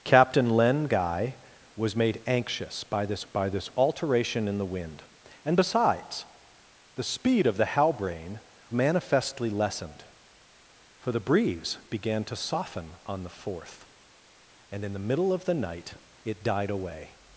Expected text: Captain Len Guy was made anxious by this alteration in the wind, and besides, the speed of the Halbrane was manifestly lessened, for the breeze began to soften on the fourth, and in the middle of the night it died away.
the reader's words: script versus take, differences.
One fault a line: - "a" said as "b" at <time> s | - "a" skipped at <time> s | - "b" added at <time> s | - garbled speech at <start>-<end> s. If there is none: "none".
- "by this" added at 3.3 s
- "was" skipped at 8.4 s